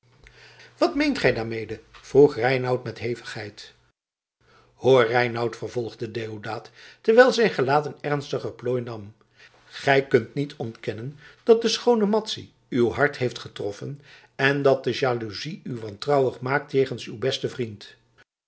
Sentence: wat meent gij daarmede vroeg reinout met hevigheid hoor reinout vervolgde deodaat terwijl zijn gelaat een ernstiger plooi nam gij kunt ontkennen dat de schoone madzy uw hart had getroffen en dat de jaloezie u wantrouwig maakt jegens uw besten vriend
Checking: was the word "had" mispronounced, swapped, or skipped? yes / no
yes